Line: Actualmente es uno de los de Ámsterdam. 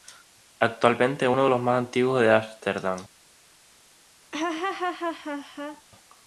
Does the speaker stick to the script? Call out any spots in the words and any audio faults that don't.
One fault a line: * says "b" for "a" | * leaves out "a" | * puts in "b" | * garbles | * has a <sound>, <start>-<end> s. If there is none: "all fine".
* puts in "más antiguos"
* has a laugh, 4.3-5.8 s